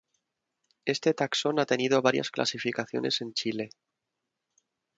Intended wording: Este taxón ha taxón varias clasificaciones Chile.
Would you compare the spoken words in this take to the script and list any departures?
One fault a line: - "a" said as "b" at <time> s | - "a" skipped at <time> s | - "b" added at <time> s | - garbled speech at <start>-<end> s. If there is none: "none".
- "taxón" said as "tenido" at 1.7 s
- "en" added at 3.2 s